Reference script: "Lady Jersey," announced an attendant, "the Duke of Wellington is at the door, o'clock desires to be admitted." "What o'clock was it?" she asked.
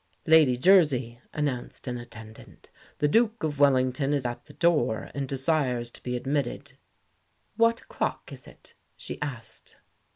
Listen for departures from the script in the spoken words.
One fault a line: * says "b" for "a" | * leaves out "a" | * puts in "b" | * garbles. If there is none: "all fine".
* says "and" for "o'clock"
* says "is" for "was"